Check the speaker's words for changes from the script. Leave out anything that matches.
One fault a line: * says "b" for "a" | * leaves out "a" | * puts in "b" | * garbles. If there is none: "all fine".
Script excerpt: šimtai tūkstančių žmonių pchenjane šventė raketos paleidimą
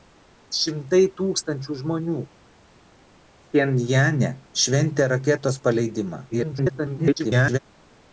* garbles